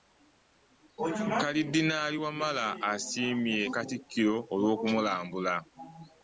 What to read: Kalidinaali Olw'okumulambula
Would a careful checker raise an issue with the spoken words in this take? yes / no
yes